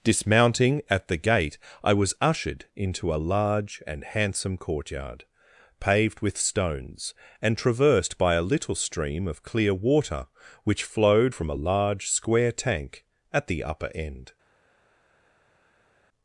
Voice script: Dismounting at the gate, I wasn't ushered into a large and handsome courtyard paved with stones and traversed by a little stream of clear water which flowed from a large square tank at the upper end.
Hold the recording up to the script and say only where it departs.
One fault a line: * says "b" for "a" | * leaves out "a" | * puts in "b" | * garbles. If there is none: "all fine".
* says "was" for "wasn't"